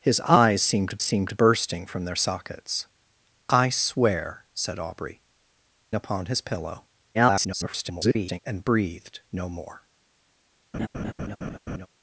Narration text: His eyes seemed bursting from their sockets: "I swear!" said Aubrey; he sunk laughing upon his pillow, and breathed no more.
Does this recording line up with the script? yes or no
no